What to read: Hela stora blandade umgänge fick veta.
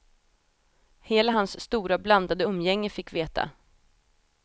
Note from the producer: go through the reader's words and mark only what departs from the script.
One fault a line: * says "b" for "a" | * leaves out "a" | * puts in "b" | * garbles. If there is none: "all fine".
* puts in "hans"